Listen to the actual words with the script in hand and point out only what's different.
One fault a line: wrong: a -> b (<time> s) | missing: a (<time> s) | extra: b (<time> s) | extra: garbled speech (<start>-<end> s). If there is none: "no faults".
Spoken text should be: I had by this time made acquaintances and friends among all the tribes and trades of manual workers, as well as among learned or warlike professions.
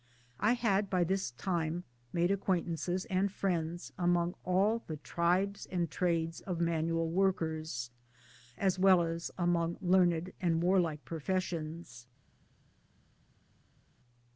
wrong: or -> and (10.4 s)